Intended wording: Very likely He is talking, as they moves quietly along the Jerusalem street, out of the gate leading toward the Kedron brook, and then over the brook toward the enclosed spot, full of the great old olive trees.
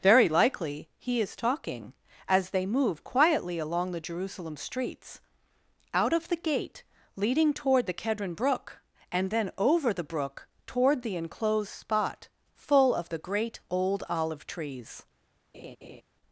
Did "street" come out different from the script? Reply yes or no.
yes